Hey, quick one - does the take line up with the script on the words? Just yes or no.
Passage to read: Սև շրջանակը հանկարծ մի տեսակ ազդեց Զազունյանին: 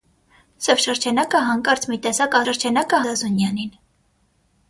no